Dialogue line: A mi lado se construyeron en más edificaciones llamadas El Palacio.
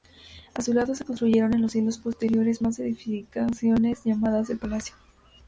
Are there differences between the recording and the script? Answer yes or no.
yes